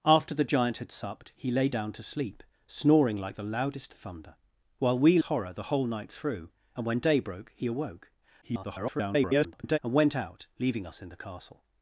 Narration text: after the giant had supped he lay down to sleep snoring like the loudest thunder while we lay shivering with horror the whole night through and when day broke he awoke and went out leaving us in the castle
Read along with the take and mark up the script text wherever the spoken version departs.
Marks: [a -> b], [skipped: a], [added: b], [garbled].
after the giant had supped he lay down to sleep snoring like the loudest thunder while we [skipped: lay shivering with] horror the whole night through and when day broke he awoke [garbled] and went out leaving us in the castle